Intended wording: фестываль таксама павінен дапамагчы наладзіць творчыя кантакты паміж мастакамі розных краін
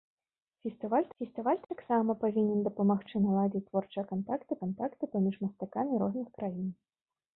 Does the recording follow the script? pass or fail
fail